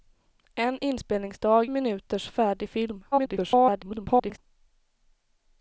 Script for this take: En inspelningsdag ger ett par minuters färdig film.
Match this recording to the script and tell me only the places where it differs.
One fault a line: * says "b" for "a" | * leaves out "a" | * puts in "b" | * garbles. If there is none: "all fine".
* leaves out "ger ett par"
* garbles